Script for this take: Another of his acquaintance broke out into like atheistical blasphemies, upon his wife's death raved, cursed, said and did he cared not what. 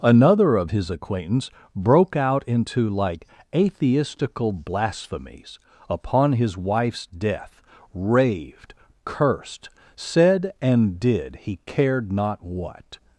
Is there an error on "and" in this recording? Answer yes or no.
no